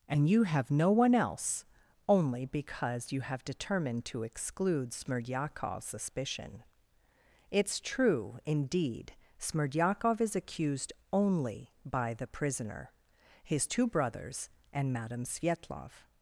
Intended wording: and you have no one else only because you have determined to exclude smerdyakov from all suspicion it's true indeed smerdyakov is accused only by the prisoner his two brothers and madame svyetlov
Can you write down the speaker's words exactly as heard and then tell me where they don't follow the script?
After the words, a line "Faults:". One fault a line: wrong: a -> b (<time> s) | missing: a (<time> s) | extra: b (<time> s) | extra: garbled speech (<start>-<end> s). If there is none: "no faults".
and you have no one else only because you have determined to exclude smerdyakov suspicion it's true indeed smerdyakov is accused only by the prisoner his two brothers and madame svyetlov
Faults:
missing: from all (5.8 s)